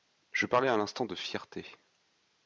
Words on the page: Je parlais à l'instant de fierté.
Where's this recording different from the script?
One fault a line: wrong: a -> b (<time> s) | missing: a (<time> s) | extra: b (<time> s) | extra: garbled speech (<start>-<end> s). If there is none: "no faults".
no faults